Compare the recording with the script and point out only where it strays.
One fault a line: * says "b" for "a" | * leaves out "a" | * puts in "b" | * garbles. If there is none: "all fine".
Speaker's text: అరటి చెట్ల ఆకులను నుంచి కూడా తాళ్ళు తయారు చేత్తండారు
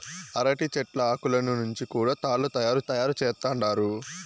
* puts in "తయారు"